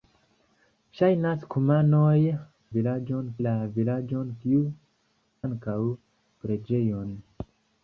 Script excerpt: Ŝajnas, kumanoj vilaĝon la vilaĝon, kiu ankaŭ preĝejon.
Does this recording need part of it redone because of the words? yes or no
no